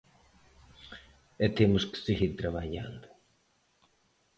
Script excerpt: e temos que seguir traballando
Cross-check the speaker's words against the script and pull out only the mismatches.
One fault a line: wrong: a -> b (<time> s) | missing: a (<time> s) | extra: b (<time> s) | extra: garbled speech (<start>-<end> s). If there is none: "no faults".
no faults